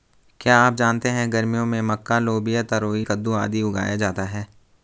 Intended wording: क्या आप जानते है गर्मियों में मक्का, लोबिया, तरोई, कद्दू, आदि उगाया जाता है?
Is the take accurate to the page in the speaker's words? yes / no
yes